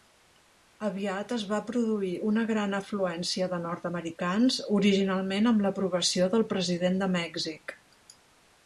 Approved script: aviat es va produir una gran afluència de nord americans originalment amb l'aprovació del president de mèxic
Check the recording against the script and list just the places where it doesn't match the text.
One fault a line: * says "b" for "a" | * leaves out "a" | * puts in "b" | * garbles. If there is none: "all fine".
all fine